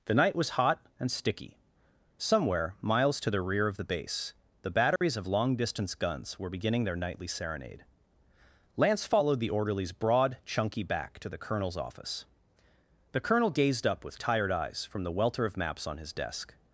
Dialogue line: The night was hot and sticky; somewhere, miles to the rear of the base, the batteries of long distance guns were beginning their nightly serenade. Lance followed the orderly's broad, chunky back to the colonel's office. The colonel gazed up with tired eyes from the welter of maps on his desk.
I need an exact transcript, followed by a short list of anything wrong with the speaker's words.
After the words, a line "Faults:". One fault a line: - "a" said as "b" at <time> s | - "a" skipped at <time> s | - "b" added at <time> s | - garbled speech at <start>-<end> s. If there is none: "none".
The night was hot and sticky; somewhere, miles to the rear of the base, the batteries of long distance guns were beginning their nightly serenade. Lance followed the orderly's broad, chunky back to the colonel's office. The colonel gazed up with tired eyes from the welter of maps on his desk.
Faults:
none